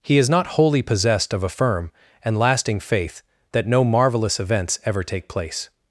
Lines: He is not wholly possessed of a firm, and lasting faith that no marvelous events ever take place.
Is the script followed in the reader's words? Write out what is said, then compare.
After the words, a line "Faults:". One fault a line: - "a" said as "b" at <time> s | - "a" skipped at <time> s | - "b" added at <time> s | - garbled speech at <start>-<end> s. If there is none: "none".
He is not wholly possessed of a firm, and lasting faith that no marvelous events ever take place.
Faults:
none